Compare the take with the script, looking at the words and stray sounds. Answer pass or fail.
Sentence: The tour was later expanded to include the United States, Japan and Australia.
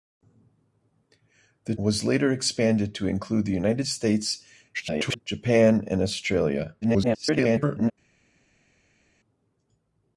fail